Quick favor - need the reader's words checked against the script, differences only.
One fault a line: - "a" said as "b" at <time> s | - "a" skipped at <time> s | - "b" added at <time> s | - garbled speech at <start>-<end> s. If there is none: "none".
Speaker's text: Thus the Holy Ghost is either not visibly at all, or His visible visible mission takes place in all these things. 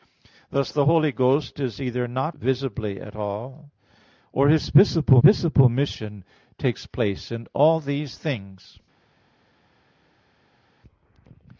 none